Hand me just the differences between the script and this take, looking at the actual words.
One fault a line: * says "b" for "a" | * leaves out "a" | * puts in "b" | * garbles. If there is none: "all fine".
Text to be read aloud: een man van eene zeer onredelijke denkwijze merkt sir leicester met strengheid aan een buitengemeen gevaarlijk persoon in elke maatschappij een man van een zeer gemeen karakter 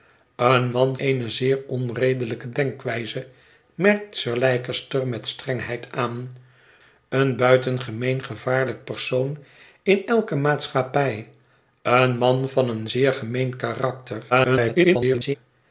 * leaves out "van"
* garbles